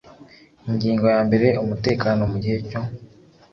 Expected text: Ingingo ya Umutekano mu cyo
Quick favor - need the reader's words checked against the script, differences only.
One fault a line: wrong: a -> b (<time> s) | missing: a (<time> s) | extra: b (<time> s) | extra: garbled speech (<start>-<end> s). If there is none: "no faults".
extra: mbere (1.3 s)
extra: gihe (2.4 s)